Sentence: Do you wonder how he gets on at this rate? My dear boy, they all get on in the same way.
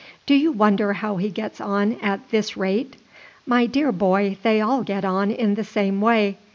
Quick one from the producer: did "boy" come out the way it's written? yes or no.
yes